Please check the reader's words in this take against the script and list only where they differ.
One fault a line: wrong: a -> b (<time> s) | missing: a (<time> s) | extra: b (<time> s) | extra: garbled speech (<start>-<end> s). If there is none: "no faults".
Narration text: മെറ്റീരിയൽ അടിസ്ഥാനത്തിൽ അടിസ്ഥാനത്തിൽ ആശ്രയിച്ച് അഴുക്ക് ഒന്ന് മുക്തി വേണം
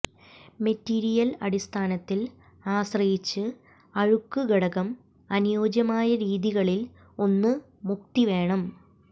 missing: അടിസ്ഥാനത്തിൽ (2.2 s)
extra: ഘടകം അനുയോജ്യമായ രീതികളിൽ (4.5 s)